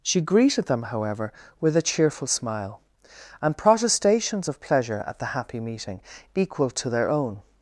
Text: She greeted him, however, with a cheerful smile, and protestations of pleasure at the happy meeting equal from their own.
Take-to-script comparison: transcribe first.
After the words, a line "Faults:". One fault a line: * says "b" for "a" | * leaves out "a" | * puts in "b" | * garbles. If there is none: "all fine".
She greeted them, however, with a cheerful smile, and protestations of pleasure at the happy meeting equal to their own.
Faults:
* says "them" for "him"
* says "to" for "from"